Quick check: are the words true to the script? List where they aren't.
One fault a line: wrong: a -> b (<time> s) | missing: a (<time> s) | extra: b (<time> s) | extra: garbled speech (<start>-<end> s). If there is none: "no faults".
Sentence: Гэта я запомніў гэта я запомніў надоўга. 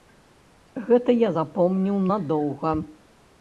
missing: гэта я запомніў (2.0 s)